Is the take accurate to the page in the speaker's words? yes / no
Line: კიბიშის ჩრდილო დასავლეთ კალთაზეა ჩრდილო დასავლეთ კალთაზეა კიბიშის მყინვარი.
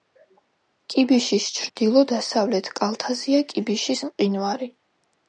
no